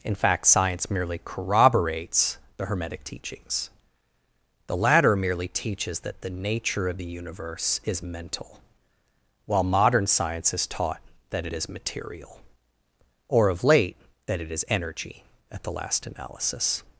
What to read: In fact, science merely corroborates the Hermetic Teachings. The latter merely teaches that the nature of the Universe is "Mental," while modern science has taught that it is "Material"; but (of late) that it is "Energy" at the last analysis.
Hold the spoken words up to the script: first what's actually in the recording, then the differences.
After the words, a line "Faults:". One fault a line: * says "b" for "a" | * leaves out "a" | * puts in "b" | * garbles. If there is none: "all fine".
In fact, science merely corroborates the Hermetic Teachings. The latter merely teaches that the nature of the Universe is "Mental," while modern science has taught that it is "Material"; or (of late) that it is "Energy" at the last analysis.
Faults:
* says "or" for "but"